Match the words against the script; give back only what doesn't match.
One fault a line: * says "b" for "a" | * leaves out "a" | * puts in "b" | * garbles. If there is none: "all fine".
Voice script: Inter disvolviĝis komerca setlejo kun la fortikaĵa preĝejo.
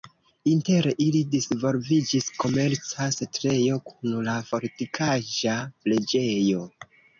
* puts in "ili"